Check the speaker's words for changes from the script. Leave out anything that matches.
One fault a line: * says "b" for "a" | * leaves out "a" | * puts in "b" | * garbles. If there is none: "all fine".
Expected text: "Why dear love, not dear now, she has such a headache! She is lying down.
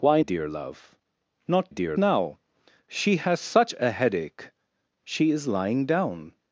all fine